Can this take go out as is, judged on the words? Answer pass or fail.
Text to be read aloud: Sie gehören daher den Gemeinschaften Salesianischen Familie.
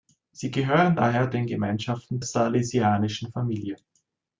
pass